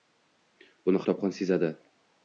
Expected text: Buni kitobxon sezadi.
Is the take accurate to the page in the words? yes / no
yes